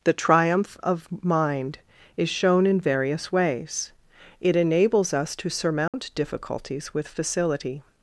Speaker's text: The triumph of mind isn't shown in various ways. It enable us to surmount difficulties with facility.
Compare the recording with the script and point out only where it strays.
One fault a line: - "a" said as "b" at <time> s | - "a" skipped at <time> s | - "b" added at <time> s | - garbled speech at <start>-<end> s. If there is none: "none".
- "isn't" said as "is" at 2.2 s
- "enable" said as "enables" at 4.5 s